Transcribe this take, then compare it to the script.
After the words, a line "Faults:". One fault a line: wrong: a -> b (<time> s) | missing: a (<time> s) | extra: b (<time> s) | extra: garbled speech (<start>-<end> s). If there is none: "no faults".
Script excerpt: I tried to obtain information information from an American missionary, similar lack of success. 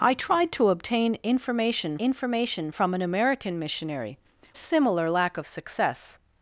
I tried to obtain information information from an American missionary, similar lack of success.
Faults:
no faults